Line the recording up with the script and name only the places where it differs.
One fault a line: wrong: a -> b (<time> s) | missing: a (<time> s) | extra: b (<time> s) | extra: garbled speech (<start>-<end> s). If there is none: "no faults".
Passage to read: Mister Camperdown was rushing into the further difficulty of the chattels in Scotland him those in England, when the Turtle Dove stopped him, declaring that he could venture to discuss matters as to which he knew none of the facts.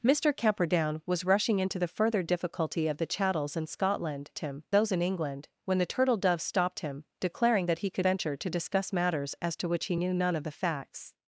no faults